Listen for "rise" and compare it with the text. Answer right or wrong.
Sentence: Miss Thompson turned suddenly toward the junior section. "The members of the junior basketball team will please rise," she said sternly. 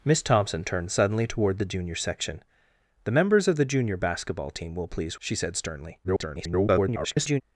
wrong